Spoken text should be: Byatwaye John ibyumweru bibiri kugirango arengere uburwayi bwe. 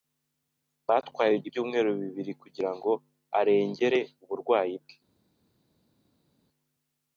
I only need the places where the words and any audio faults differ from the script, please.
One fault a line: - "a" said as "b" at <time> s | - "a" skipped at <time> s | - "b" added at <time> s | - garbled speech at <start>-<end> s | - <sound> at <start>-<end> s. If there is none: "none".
- "John" skipped at 1.4 s